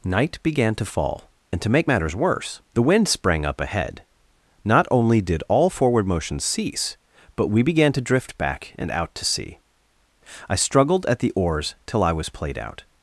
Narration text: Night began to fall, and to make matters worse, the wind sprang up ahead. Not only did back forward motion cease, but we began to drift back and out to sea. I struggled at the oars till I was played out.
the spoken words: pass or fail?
fail